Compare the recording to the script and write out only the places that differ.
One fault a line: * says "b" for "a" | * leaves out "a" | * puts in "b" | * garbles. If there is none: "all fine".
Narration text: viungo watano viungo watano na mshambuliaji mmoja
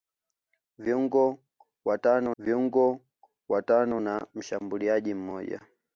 all fine